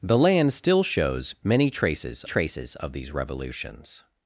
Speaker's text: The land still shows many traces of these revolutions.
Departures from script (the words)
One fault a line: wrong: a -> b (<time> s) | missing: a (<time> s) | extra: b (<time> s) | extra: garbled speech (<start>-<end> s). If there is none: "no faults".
extra: traces (2.2 s)